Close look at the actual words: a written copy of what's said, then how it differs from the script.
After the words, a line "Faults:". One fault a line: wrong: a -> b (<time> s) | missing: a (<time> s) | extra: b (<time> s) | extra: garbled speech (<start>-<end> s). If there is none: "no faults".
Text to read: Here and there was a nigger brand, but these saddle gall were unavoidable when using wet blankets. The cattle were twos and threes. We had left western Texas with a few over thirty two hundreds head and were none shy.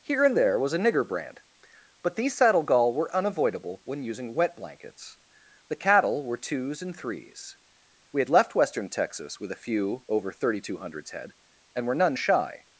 Here and there was a nigger brand, but these saddle gall were unavoidable when using wet blankets. The cattle were twos and threes. We had left western Texas with a few over thirty two hundreds head and were none shy.
Faults:
no faults